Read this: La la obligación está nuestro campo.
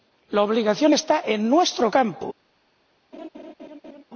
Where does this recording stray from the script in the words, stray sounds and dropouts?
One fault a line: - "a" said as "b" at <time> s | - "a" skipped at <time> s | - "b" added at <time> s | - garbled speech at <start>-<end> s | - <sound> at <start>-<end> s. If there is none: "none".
- "la" skipped at 0.4 s
- "en" added at 1.2 s
- laugh at 3.1-4.0 s